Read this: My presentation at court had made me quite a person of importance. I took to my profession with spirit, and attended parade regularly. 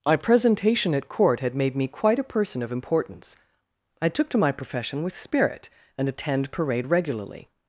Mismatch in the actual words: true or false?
true